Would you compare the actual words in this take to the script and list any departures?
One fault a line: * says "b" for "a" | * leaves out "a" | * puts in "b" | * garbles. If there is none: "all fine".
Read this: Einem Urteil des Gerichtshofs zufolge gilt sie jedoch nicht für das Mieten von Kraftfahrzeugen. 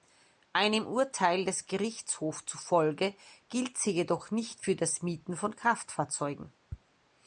all fine